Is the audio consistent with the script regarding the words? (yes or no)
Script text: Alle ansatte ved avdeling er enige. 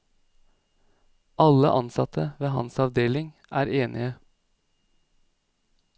no